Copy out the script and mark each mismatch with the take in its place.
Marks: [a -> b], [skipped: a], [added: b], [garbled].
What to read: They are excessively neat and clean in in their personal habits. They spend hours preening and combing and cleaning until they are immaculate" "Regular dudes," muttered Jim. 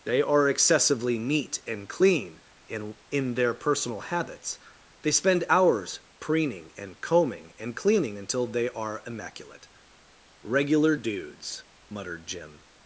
They are excessively neat and clean in in their personal habits. They spend hours preening and combing and cleaning until they are immaculate" "Regular dudes," muttered Jim.